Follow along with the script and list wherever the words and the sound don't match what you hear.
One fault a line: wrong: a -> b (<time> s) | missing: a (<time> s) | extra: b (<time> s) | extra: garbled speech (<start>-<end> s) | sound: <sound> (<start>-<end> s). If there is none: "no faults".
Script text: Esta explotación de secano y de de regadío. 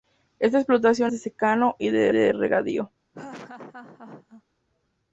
sound: laugh (3.1-4.4 s)